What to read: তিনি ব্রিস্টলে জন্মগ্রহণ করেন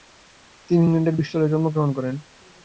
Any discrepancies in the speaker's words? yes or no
yes